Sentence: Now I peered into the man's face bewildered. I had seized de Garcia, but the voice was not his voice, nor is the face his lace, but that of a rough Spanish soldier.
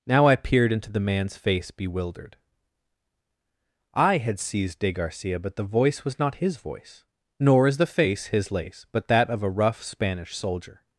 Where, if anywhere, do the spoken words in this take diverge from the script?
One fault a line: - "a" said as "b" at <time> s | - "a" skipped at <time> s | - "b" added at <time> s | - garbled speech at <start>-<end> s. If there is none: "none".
none